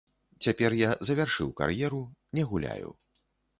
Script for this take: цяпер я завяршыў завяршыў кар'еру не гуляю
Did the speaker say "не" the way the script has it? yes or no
yes